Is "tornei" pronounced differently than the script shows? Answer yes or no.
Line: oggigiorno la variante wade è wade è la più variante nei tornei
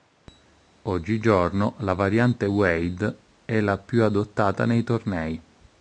no